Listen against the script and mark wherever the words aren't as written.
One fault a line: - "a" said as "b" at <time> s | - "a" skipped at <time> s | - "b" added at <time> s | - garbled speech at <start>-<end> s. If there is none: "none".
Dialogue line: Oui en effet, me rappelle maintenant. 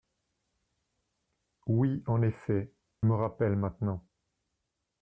none